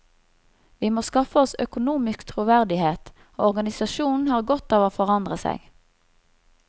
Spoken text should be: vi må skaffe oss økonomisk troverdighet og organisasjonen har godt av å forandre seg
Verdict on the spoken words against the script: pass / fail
pass